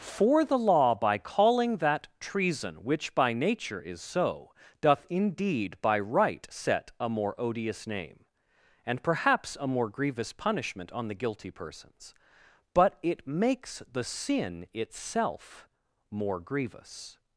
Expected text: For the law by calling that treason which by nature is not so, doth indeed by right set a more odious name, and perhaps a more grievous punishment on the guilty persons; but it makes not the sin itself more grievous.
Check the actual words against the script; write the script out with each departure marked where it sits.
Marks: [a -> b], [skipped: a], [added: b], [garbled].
For the law by calling that treason which by nature is [skipped: not] so, doth indeed by right set a more odious name, and perhaps a more grievous punishment on the guilty persons; but it makes [skipped: not] the sin itself more grievous.